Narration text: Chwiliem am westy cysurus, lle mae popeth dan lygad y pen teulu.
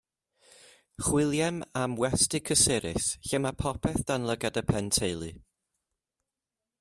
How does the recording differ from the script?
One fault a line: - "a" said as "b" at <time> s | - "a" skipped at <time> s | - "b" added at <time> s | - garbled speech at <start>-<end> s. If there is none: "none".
none